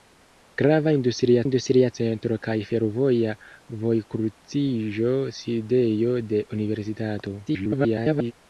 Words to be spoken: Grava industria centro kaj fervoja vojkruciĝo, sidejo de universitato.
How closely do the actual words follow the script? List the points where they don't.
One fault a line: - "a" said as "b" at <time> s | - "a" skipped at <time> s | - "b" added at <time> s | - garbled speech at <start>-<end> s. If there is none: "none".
- "industria" added at 1.4 s
- garbled speech at 7.5-8.3 s